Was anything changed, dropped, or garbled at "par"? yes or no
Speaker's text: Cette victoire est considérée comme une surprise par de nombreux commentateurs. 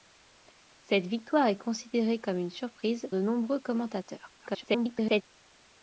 yes